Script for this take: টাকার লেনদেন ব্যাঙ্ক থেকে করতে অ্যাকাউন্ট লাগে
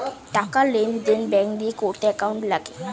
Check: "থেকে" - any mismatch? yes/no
yes